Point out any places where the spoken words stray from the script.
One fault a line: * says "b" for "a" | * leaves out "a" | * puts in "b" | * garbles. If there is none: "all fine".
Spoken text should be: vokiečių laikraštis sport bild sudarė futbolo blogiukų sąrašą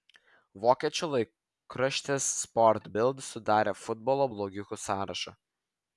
all fine